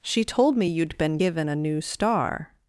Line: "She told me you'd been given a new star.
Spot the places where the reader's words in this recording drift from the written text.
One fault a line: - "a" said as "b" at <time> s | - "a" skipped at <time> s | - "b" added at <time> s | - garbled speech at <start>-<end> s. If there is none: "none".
none